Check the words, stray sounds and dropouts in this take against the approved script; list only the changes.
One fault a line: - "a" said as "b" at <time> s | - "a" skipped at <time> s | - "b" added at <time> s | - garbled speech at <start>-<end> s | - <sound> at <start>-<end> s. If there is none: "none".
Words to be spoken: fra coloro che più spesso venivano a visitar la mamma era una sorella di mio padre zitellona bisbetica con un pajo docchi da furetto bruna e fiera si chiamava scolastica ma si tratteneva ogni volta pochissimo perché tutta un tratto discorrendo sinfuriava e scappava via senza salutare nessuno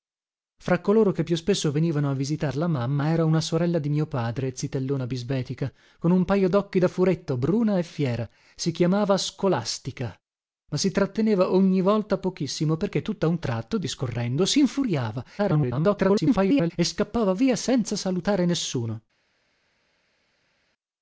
- garbled speech at 15.4-16.7 s